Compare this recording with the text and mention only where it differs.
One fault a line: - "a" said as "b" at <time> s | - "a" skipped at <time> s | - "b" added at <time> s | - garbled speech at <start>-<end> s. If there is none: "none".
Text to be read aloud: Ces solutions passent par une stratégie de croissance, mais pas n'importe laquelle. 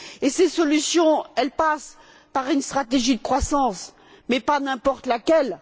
none